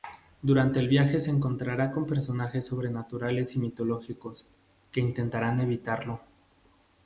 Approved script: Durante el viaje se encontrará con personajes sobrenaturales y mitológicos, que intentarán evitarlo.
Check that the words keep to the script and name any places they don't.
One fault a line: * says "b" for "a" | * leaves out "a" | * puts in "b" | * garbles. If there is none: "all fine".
all fine